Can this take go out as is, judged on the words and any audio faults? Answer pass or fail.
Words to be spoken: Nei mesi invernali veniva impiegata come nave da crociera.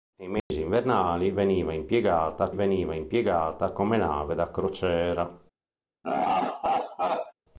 fail